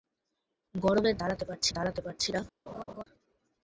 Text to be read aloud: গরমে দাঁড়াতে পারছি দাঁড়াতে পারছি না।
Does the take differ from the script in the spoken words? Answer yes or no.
no